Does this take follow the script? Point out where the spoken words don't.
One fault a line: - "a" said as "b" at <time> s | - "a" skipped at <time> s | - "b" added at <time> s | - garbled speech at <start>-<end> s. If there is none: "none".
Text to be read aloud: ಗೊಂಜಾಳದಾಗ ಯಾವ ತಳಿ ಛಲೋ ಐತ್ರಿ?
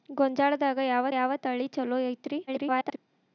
- "ಯಾವ" added at 1.1 s
- garbled speech at 2.5-3.0 s